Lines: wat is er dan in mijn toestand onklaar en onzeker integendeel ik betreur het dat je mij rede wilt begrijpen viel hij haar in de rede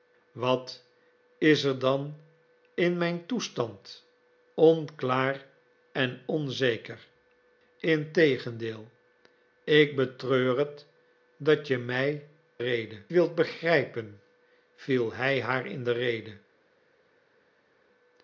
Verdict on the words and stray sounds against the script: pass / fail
pass